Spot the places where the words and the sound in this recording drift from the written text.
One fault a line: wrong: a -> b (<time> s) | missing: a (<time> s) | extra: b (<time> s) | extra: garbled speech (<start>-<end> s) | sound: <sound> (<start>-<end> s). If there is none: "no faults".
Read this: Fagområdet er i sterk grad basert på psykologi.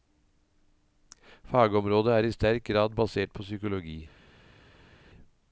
no faults